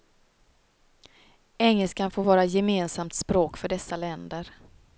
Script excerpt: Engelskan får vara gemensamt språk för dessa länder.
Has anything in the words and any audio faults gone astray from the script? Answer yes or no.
no